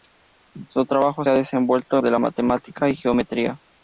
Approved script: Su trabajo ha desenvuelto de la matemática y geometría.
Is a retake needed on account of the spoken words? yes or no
no